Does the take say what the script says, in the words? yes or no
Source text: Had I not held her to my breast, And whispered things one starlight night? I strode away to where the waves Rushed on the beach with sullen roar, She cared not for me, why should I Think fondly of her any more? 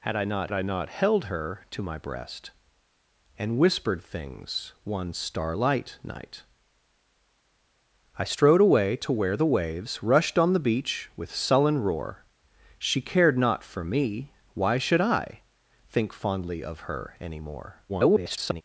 no